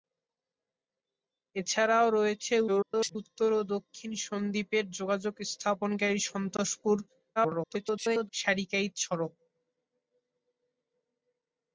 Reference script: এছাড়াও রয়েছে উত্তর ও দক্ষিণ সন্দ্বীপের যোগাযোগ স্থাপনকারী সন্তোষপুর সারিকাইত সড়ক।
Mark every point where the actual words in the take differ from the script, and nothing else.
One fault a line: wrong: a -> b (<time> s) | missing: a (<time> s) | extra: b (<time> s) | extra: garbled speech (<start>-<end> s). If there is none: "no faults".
extra: garbled speech (2.7-3.2 s)
extra: garbled speech (7.4-8.3 s)